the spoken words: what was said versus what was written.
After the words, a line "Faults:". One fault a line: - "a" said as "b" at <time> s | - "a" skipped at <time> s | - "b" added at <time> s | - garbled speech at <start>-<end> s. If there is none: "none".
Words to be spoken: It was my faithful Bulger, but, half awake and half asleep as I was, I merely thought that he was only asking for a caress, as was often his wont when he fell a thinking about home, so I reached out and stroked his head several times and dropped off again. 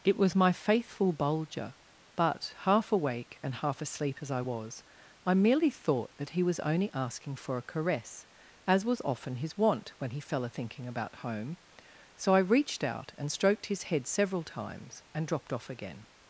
It was my faithful Bulger, but, half awake and half asleep as I was, I merely thought that he was only asking for a caress, as was often his wont when he fell a thinking about home, so I reached out and stroked his head several times and dropped off again.
Faults:
none